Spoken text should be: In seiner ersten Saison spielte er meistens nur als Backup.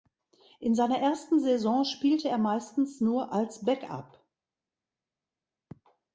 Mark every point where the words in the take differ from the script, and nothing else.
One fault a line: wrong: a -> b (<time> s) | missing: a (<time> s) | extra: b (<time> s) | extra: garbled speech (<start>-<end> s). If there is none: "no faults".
no faults